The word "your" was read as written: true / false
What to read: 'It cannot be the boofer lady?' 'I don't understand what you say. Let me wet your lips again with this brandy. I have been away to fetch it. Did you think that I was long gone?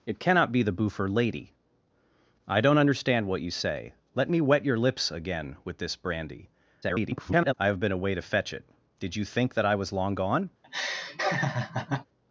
true